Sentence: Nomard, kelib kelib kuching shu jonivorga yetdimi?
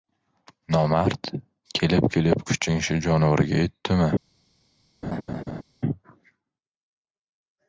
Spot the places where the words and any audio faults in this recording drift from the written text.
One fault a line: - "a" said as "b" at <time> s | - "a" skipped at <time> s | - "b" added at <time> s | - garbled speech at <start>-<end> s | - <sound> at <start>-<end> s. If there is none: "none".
- laugh at 5.0-5.6 s